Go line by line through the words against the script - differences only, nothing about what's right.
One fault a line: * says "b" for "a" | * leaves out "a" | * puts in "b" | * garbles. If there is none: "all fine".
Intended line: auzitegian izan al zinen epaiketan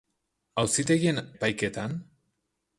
* leaves out "izan al zinen"